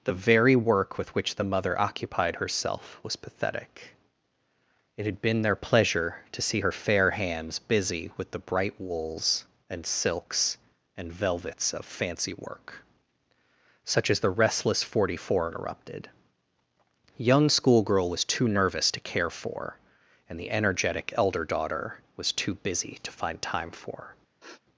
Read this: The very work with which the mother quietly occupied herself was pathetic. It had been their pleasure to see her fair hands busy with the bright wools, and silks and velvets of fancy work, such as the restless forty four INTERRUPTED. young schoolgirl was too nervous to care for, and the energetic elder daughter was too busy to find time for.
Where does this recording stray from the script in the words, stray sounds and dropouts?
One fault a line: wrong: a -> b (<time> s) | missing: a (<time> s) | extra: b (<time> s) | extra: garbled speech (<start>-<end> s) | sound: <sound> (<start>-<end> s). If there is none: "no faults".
missing: quietly (1.8 s)
sound: sniff (24.4-24.6 s)